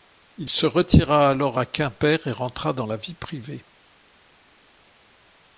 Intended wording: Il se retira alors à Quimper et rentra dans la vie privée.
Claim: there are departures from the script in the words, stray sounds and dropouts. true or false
false